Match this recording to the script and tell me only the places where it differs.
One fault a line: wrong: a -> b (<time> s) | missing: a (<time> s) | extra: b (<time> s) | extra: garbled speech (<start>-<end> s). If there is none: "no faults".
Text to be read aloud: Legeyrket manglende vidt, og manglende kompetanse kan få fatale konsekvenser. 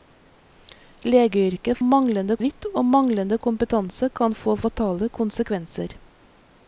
no faults